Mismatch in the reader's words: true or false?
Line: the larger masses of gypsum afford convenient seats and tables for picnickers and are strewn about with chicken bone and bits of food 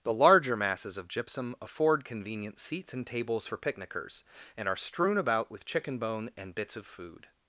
false